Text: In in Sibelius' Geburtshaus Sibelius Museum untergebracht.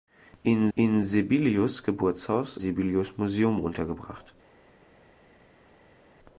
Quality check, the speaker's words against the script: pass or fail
pass